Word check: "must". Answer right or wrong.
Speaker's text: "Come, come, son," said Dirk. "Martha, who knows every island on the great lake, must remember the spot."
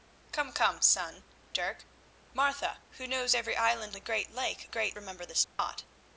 wrong